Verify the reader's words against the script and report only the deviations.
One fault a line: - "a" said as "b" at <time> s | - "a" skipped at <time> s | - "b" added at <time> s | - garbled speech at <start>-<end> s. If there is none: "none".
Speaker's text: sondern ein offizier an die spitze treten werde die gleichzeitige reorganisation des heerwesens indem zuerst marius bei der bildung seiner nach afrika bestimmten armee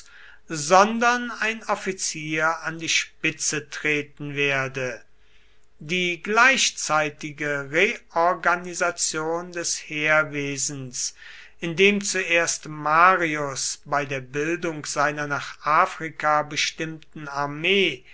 none